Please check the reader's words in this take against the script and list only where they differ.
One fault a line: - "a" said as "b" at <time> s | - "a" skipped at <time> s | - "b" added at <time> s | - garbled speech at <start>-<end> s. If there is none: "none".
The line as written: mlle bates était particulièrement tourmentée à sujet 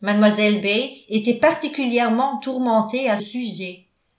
none